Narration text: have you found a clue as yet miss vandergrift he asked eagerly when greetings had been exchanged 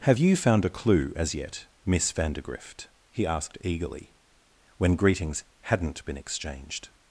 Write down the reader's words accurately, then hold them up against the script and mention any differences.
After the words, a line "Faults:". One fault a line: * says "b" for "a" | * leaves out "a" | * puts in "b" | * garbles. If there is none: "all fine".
have you found a clue as yet miss vandergrift he asked eagerly when greetings hadn't been exchanged
Faults:
* says "hadn't" for "had"